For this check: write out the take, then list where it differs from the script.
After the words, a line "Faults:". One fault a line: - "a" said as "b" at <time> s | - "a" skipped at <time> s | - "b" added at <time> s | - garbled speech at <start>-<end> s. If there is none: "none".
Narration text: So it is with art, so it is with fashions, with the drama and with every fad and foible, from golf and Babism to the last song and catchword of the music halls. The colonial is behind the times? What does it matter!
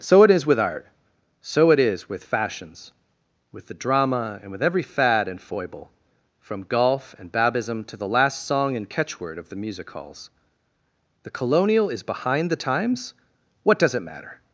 So it is with art, so it is with fashions, with the drama and with every fad and foible, from golf and Babism to the last song and catchword of the music halls. The colonial is behind the times? What does it matter!
Faults:
none